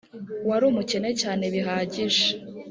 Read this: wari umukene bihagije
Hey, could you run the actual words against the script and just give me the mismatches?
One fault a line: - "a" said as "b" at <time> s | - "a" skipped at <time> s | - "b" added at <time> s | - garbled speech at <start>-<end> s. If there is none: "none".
- "cyane" added at 1.2 s